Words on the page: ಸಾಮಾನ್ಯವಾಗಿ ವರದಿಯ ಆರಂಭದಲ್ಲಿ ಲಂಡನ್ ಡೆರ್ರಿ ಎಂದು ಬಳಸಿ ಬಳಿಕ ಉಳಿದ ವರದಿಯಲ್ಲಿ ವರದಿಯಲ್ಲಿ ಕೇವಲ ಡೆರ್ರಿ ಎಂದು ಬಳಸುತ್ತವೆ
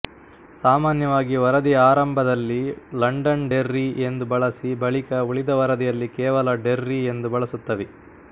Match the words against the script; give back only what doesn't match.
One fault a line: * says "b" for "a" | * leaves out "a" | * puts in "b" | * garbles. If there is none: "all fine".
* leaves out "ವರದಿಯಲ್ಲಿ"